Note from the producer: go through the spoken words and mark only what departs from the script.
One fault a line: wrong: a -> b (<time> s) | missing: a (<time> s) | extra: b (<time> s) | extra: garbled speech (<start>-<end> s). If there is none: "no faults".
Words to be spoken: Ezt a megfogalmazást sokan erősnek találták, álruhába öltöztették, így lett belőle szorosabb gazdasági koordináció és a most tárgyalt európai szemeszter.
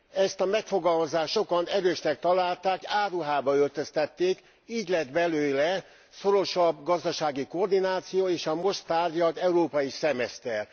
no faults